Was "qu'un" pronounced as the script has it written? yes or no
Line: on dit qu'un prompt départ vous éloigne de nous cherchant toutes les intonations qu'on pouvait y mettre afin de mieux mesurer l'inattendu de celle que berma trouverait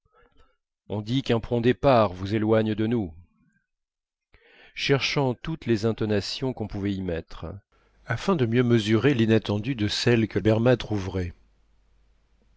yes